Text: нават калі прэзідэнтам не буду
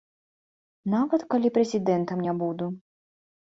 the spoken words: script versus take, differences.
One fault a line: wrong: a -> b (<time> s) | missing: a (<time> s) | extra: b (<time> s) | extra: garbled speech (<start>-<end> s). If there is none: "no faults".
no faults